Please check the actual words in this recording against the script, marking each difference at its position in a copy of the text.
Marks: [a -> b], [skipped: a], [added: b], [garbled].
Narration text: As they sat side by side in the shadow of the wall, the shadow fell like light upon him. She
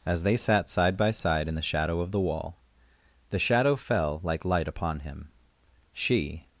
As they sat side by side in the shadow of the wall, the shadow fell like light upon him. She